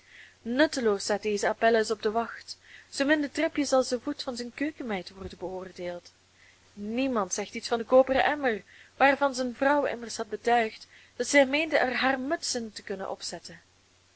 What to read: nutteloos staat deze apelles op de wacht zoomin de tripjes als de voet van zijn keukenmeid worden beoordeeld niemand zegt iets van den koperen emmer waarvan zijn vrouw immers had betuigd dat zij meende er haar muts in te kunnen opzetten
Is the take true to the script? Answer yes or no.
yes